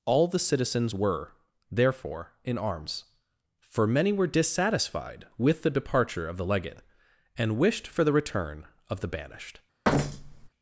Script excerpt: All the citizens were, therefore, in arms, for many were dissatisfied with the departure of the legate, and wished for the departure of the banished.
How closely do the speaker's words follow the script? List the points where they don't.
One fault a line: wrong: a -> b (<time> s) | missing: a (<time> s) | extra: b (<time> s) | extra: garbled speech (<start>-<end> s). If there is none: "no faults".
wrong: departure -> return (8.1 s)